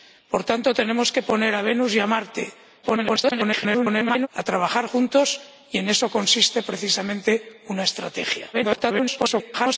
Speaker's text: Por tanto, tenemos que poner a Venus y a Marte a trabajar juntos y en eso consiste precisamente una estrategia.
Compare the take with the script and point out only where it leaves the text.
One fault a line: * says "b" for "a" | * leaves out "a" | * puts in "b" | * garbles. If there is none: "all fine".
* garbles
* garbles